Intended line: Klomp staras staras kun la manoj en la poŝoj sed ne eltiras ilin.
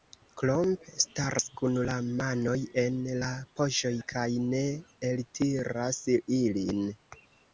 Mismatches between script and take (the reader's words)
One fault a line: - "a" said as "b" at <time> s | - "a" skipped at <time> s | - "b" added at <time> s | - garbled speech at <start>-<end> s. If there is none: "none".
- "staras" skipped at 1.4 s
- "sed" said as "kaj" at 4.1 s